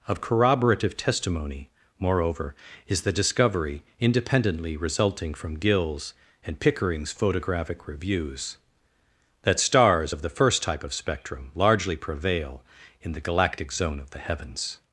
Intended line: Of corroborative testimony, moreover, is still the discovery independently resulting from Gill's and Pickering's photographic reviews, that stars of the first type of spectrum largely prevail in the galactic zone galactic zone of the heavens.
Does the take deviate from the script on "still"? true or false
true